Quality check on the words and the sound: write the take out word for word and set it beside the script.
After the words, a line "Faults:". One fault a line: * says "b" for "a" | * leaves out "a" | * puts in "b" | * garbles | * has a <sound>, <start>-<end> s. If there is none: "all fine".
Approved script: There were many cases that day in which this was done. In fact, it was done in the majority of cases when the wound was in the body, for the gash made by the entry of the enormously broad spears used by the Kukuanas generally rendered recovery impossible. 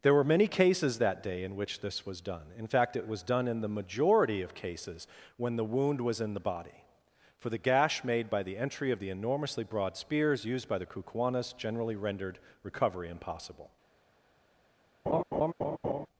There were many cases that day in which this was done. In fact, it was done in the majority of cases when the wound was in the body, for the gash made by the entry of the enormously broad spears used by the Kukuanas generally rendered recovery impossible.
Faults:
* has a laugh, 15.1-16.1 s